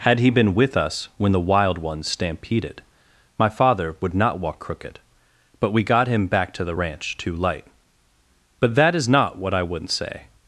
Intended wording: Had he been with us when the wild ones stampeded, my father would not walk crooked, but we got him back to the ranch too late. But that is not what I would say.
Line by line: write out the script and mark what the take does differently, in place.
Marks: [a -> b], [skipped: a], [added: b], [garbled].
Had he been with us when the wild ones stampeded, my father would not walk crooked, but we got him back to the ranch too [late. -> light] But that is not what I [would -> wouldn't] say.